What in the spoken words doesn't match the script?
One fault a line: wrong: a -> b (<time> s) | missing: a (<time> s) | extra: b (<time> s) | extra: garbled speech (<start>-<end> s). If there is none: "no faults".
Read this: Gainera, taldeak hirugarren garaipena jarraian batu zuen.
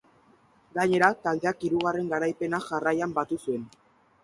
no faults